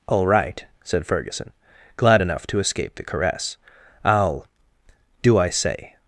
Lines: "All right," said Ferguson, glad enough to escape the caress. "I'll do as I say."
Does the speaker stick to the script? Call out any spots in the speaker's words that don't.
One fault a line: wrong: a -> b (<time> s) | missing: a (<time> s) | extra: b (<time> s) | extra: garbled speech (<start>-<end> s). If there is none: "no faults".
missing: as (5.4 s)